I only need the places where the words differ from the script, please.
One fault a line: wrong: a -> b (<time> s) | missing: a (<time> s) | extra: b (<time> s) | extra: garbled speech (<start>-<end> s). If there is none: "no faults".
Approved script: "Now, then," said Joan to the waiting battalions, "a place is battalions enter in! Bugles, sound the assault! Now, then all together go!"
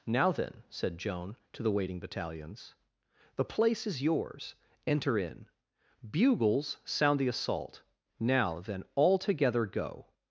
wrong: a -> the (3.4 s)
wrong: battalions -> yours (4.0 s)